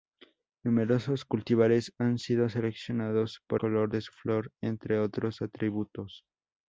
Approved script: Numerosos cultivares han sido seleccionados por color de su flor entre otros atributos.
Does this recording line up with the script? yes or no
yes